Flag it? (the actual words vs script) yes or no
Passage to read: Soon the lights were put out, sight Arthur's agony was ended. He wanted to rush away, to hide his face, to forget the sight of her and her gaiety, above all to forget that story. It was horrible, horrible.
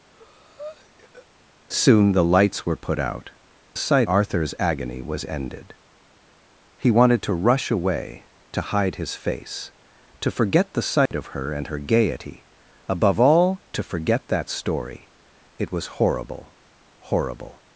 no